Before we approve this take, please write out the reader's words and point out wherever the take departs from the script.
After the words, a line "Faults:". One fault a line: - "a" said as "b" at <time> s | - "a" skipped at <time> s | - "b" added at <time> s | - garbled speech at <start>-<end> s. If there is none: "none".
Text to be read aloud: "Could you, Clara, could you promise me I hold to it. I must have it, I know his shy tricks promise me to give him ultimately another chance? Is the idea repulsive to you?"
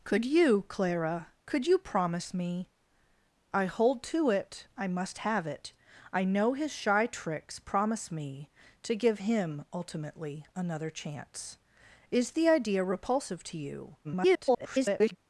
"Could you, Clara, could you promise me I hold to it. I must have it, I know his shy tricks promise me to give him ultimately another chance? Is the idea repulsive to you?" [garbled]
Faults:
- garbled speech at 14.0-15.2 s